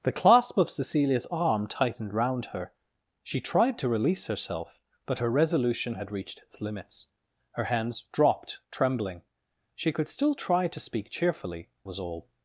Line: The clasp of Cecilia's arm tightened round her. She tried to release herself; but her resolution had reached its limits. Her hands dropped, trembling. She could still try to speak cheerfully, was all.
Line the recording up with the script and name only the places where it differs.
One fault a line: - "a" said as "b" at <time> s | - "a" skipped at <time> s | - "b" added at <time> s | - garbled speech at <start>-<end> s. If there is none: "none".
none